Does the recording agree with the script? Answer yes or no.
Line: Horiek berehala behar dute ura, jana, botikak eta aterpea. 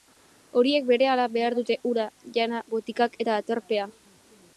yes